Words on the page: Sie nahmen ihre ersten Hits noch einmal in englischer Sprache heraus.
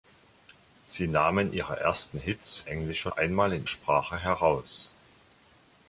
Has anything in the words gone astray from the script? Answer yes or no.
yes